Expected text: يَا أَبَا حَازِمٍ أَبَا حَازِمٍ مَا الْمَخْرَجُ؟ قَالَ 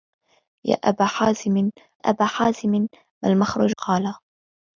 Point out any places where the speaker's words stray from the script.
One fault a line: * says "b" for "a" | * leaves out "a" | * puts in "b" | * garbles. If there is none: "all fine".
all fine